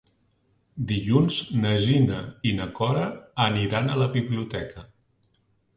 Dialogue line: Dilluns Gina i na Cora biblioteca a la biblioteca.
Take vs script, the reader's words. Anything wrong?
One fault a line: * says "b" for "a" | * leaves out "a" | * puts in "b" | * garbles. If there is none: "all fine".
* puts in "na"
* says "aniran" for "biblioteca"